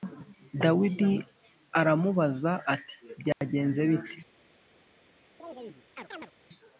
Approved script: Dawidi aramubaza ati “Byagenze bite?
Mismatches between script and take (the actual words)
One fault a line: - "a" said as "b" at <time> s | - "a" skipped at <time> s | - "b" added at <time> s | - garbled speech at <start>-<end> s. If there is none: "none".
none